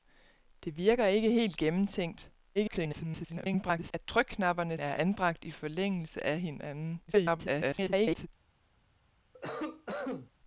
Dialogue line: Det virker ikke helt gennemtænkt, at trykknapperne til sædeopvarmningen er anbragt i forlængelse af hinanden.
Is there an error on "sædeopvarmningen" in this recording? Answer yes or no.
yes